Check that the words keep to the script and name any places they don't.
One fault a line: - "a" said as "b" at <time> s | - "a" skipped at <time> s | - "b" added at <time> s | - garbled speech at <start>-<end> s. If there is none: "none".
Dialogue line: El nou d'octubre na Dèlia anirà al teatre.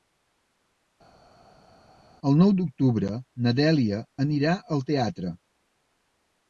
none